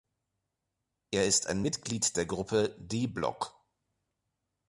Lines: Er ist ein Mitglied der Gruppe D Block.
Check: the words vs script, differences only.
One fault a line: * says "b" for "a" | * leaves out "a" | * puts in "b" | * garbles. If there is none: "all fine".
all fine